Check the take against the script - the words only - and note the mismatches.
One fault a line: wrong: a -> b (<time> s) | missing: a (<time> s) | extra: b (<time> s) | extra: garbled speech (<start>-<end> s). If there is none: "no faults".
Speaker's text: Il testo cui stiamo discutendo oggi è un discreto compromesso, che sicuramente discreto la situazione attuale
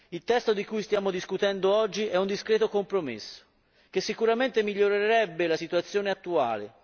extra: di (0.5 s)
wrong: discreto -> migliorerebbe (4.6 s)